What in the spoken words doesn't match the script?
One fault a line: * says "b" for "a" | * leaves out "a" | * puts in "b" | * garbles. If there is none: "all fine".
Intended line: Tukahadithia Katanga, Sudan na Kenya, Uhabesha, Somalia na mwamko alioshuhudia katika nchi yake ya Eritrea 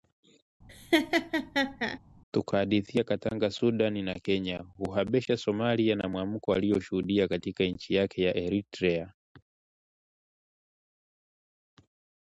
all fine